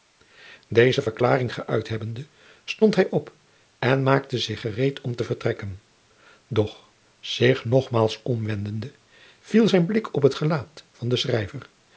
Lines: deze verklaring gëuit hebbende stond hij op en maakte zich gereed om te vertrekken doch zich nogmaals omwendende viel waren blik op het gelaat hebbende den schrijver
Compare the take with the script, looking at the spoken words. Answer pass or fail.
fail